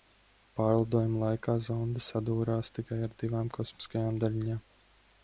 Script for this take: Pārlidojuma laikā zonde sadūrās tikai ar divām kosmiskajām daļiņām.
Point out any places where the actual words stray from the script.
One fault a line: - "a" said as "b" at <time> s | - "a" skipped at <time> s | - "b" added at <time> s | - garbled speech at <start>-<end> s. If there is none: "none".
none